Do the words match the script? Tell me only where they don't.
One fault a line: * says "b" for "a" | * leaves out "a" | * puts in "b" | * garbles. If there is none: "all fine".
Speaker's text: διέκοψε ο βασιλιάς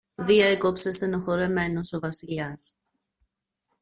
* puts in "στενοχωρεμένος"